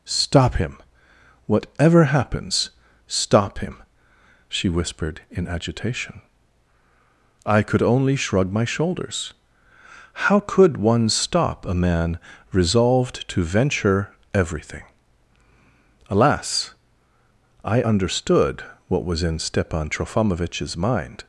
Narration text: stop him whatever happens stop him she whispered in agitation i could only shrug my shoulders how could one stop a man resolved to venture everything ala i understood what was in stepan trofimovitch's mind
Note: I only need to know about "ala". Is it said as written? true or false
false